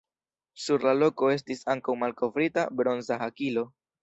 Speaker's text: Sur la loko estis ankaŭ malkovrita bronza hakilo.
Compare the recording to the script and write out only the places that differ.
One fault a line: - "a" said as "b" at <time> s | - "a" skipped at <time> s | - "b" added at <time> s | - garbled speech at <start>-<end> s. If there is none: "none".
none